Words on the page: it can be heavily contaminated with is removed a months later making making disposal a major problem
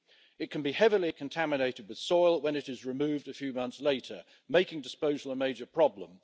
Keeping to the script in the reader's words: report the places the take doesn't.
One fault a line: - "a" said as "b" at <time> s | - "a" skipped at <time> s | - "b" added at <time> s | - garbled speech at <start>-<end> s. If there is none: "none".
- "soil when it" added at 2.0 s
- "few" added at 3.3 s
- "making" skipped at 4.8 s